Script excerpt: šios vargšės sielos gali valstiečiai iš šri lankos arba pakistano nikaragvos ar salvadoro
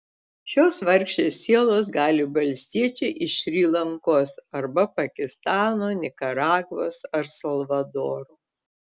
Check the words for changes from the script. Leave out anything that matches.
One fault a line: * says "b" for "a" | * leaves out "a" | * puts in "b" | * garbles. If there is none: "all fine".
all fine